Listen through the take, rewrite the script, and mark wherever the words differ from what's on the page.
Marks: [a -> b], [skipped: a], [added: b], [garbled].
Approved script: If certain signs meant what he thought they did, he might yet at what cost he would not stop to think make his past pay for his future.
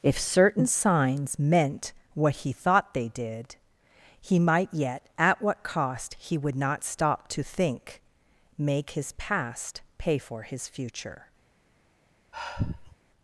If certain signs meant what he thought they did, he might yet at what cost he would not stop to think make his past pay for his future.